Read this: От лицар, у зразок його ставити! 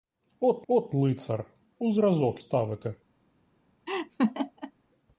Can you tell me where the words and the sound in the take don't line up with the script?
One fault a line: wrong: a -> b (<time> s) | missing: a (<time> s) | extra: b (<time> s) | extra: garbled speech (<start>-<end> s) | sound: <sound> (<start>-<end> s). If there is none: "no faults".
extra: от (0.7 s)
missing: його (2.4 s)
sound: laugh (3.9-4.7 s)